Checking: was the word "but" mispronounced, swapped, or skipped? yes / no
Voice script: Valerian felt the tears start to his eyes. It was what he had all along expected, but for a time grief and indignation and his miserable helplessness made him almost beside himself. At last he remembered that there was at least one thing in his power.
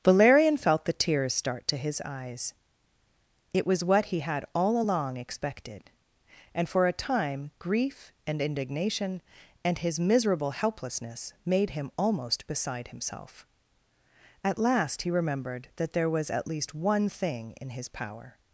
yes